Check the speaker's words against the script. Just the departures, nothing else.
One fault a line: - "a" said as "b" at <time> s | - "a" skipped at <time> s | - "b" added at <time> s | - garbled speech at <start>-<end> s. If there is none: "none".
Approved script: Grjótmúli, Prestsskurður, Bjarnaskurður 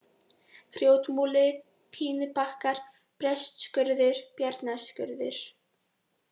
- "Pínubakkar" added at 2.0 s